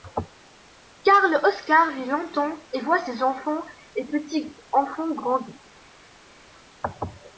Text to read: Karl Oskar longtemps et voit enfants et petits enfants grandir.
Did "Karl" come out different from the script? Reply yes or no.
no